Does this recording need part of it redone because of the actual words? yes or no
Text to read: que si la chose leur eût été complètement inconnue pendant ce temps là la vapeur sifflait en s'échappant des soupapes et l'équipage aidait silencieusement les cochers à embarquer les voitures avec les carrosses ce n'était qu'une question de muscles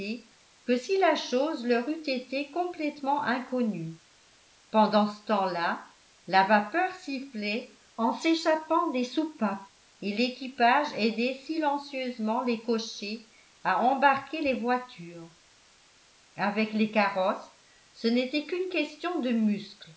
no